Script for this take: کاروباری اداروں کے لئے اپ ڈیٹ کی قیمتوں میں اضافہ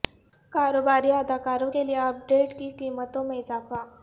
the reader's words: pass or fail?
pass